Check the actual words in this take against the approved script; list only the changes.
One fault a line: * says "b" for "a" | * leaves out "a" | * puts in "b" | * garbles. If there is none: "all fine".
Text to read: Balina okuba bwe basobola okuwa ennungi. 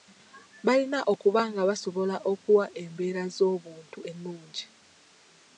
* says "nga" for "bwe"
* puts in "embeera z'obuntu"